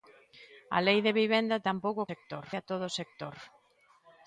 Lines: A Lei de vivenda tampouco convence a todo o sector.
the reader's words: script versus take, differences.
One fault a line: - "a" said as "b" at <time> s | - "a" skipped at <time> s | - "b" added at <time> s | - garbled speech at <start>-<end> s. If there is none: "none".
- "convence" said as "sector" at 2.1 s